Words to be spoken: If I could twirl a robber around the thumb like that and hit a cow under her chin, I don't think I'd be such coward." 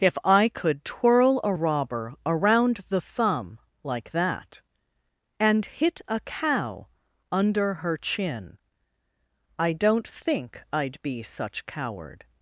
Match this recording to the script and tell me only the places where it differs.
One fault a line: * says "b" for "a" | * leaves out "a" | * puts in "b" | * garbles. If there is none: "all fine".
all fine